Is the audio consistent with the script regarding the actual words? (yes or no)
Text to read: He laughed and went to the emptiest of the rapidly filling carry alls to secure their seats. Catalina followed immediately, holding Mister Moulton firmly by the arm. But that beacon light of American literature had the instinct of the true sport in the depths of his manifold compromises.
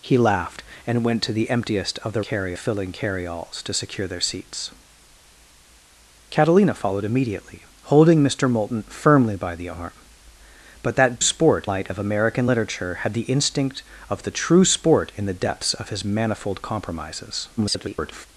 no